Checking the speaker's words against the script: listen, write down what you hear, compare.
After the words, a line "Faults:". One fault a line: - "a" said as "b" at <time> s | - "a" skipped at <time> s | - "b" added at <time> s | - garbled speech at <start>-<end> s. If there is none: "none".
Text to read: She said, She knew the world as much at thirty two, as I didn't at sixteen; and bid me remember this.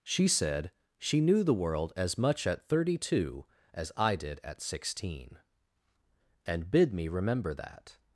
She said, She knew the world as much at thirty two, as I did at sixteen; and bid me remember that.
Faults:
- "didn't" said as "did" at 4.2 s
- "this" said as "that" at 7.5 s